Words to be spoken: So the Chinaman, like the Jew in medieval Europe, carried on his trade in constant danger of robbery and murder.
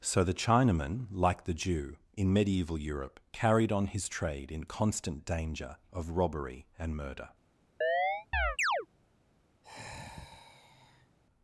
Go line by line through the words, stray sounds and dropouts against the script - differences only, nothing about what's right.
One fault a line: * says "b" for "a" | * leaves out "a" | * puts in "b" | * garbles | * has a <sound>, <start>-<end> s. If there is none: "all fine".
* has a chirp, 7.8-8.9 s
* has a sigh, 9.6-11.2 s